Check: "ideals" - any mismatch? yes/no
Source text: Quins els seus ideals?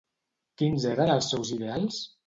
no